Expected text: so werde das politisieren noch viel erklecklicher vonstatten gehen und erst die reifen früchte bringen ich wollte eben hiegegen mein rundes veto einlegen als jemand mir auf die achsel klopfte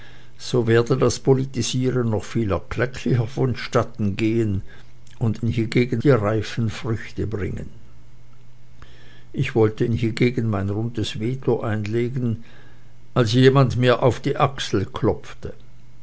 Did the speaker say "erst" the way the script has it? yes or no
no